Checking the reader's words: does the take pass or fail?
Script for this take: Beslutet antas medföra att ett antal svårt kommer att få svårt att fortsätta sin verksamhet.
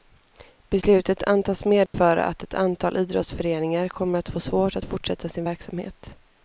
fail